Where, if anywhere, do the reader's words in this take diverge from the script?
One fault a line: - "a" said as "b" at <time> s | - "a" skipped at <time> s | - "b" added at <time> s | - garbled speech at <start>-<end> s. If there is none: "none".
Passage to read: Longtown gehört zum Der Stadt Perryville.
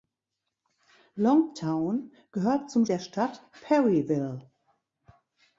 none